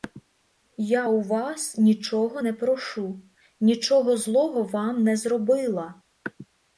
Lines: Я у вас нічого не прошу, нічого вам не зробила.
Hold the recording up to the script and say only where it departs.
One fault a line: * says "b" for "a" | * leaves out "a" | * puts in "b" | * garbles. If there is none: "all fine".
* puts in "злого"